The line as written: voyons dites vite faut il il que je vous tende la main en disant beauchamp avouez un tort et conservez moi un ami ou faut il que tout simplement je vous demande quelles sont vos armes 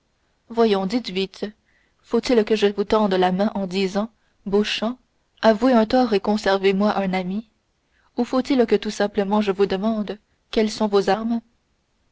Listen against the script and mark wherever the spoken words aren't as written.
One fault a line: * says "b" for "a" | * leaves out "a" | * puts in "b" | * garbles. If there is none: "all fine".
* leaves out "il"